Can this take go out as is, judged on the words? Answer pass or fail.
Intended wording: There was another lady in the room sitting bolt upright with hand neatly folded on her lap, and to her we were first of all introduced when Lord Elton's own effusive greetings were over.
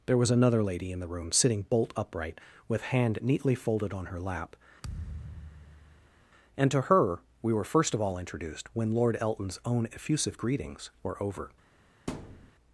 pass